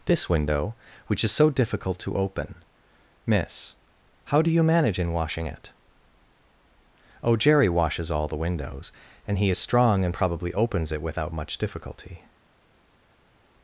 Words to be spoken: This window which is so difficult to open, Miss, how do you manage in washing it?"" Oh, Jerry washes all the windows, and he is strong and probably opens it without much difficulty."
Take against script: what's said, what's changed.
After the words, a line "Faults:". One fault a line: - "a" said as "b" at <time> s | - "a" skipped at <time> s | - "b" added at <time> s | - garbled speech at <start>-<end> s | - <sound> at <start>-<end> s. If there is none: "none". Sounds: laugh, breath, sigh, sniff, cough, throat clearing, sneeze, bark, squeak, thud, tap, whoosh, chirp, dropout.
This window which is so difficult to open, Miss, how do you manage in washing it?"" Oh, Jerry washes all the windows, and he is strong and probably opens it without much difficulty."
Faults:
none